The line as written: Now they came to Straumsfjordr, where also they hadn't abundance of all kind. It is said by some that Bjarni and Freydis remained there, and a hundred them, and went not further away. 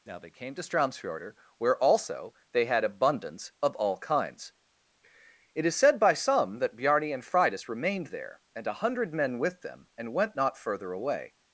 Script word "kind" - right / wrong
wrong